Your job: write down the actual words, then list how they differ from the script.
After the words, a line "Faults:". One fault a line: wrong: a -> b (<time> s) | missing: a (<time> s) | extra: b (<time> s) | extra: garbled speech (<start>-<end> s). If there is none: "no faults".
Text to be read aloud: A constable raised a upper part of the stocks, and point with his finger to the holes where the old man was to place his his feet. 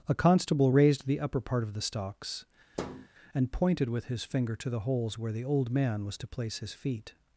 A constable raised the upper part of the stocks, and pointed with his finger to the holes where the old man was to place his feet.
Faults:
wrong: a -> the (1.1 s)
wrong: point -> pointed (3.5 s)
missing: his (6.7 s)